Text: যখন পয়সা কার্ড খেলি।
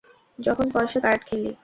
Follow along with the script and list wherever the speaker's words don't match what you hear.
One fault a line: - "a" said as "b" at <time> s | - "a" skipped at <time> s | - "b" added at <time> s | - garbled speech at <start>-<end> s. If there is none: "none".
none